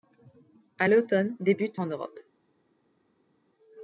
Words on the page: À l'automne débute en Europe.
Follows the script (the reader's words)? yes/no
yes